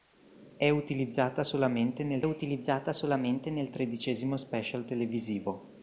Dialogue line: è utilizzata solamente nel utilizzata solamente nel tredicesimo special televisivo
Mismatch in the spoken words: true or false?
false